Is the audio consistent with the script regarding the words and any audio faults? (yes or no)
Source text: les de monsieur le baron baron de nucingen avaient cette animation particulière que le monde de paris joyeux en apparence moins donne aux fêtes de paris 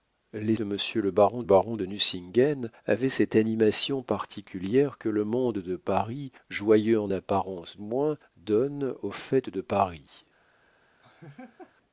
no